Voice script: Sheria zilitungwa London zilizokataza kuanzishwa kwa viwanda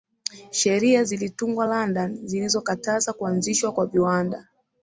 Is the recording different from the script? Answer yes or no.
no